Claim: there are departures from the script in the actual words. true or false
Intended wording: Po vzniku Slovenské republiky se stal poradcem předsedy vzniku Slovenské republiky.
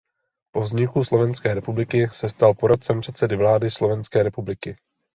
true